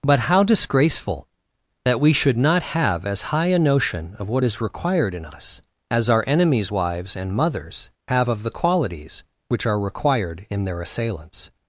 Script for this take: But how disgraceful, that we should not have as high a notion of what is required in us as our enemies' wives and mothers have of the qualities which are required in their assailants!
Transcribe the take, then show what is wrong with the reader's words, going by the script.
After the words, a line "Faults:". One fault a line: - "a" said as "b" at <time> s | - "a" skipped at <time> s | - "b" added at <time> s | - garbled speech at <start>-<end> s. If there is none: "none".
But how disgraceful, that we should not have as high a notion of what is required in us as our enemies' wives and mothers have of the qualities which are required in their assailants!
Faults:
none